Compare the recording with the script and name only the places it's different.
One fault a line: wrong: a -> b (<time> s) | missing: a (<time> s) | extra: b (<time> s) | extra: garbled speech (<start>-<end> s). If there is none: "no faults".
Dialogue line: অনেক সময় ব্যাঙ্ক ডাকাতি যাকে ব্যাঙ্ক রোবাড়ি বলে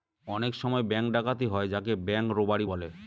extra: হয় (1.5 s)